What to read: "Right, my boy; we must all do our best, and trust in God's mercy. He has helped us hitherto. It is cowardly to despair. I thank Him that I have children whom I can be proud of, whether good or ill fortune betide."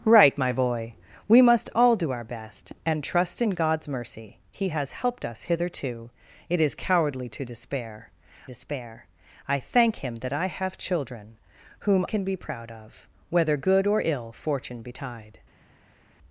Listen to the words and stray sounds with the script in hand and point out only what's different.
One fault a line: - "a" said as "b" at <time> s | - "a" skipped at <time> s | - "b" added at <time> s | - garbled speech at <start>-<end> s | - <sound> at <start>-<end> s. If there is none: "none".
- "despair" added at 8.4 s
- "I" skipped at 12.0 s